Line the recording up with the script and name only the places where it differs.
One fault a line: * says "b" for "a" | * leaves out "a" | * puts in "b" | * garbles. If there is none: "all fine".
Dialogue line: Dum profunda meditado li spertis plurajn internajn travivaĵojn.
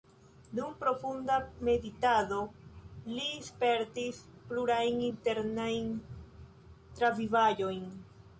all fine